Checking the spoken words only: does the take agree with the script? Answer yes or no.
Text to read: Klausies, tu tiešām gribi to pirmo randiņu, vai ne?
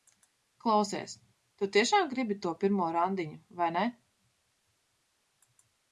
yes